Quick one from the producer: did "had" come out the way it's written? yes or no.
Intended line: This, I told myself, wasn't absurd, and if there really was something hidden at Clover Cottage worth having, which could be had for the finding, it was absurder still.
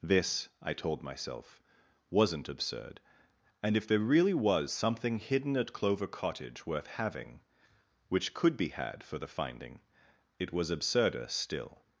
yes